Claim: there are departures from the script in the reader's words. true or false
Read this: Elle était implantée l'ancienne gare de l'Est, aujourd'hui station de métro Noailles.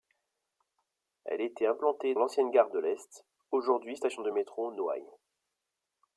false